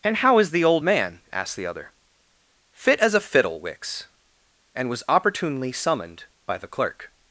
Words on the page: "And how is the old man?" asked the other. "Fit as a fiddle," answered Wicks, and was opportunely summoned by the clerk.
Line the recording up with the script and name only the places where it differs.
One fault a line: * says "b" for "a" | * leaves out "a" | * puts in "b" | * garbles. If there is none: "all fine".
* leaves out "answered"